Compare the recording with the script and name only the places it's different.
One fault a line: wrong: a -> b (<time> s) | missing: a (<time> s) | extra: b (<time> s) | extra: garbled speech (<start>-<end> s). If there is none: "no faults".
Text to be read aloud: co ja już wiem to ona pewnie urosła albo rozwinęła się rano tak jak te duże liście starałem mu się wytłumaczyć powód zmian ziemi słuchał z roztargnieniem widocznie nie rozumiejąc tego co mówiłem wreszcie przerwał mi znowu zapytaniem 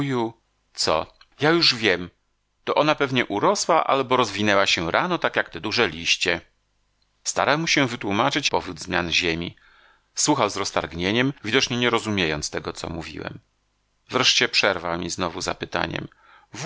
no faults